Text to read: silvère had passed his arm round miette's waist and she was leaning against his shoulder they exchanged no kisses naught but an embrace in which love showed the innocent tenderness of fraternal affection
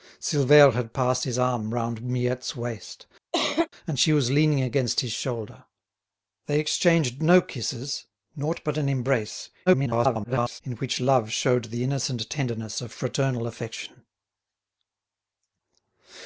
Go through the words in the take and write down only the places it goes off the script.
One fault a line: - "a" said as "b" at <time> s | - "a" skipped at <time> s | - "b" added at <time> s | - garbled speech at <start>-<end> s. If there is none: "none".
- garbled speech at 9.7-10.6 s